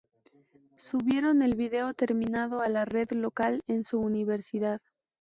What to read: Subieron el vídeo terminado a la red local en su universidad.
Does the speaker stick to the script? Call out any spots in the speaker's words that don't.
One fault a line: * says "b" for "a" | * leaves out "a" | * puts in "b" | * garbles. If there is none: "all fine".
all fine